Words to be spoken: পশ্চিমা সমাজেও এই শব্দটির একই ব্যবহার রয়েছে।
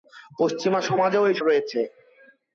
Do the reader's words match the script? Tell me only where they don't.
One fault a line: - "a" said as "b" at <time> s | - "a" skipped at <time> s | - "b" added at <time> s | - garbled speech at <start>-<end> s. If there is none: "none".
- "শব্দটির একই ব্যবহার" skipped at 1.4 s